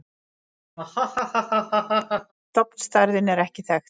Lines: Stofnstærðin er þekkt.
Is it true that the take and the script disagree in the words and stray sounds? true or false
true